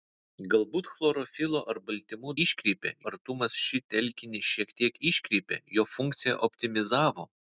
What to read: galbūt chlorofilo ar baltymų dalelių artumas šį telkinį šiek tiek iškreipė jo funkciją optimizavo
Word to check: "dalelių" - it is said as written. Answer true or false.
false